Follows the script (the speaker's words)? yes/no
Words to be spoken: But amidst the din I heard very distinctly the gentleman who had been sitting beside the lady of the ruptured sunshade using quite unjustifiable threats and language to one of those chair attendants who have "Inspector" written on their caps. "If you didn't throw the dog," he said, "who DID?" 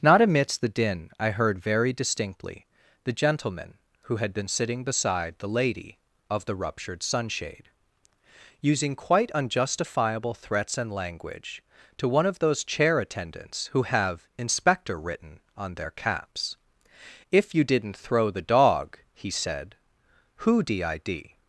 no